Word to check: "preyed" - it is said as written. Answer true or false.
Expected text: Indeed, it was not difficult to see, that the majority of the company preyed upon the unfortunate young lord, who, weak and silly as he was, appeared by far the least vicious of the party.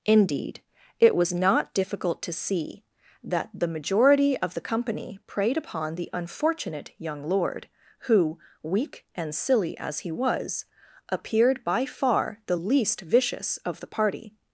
true